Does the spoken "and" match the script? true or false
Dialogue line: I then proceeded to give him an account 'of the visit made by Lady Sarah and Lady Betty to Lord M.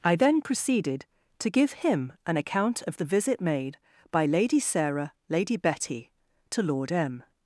false